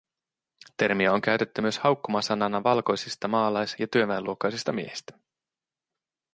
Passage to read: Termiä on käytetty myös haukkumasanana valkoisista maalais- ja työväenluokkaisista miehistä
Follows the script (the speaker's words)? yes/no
yes